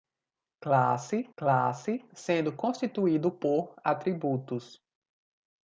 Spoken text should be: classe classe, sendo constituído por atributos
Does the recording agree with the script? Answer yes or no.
yes